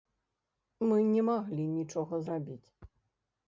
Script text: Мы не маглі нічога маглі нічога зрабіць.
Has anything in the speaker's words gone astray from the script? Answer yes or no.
yes